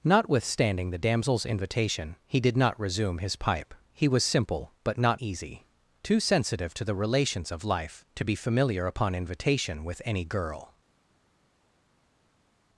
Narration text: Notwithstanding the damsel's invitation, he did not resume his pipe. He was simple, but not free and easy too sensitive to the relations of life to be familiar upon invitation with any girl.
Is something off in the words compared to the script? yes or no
yes